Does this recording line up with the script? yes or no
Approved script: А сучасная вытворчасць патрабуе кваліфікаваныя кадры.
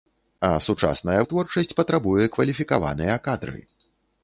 yes